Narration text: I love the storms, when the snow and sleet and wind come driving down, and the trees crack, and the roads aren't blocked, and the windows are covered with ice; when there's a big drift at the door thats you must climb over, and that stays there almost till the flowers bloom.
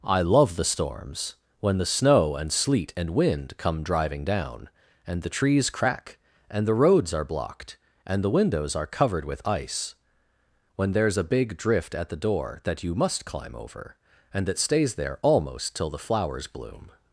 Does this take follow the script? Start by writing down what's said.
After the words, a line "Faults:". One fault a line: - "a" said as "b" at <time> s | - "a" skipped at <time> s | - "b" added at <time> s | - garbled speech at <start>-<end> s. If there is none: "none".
I love the storms, when the snow and sleet and wind come driving down, and the trees crack, and the roads are blocked, and the windows are covered with ice; when there's a big drift at the door that you must climb over, and that stays there almost till the flowers bloom.
Faults:
- "aren't" said as "are" at 7.1 s
- "thats" said as "that" at 12.6 s